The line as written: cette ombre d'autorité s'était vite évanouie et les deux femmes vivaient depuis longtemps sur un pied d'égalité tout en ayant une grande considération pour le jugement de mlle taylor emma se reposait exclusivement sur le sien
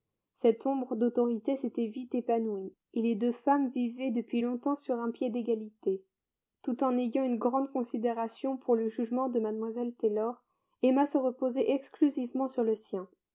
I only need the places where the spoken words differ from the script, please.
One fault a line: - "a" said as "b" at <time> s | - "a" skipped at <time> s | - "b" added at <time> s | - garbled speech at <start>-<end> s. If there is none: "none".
none